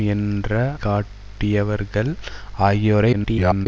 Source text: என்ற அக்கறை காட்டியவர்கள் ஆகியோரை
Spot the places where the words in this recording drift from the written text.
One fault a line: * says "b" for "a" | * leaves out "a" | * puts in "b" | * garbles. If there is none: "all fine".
* leaves out "அக்கறை"
* garbles